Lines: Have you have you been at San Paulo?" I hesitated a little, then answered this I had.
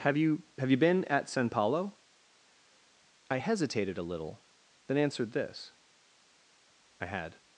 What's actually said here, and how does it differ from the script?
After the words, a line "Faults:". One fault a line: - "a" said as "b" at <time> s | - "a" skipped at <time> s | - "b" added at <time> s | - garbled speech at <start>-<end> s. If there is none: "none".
Have you have you been at San Paulo?" I hesitated a little, then answered this I had.
Faults:
none